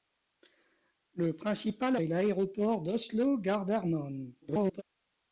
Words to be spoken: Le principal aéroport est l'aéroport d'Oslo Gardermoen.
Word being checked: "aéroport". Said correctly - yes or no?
no